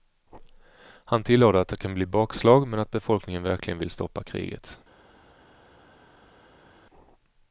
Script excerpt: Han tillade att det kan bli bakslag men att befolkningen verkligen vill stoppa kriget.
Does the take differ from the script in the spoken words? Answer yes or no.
no